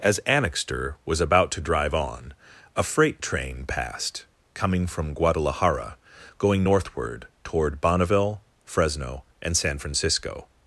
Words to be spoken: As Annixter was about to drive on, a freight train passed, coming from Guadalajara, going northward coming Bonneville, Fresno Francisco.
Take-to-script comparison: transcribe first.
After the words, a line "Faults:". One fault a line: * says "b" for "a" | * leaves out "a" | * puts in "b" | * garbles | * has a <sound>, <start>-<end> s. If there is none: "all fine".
As Annixter was about to drive on, a freight train passed, coming from Guadalajara, going northward toward Bonneville, Fresno and San Francisco.
Faults:
* says "toward" for "coming"
* puts in "and San"